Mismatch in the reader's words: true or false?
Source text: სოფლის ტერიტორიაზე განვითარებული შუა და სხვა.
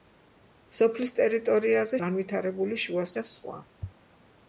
false